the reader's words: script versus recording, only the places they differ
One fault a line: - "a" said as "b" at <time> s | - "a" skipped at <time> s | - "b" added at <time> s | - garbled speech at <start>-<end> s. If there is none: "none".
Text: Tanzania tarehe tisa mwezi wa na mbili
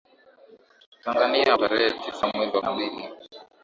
none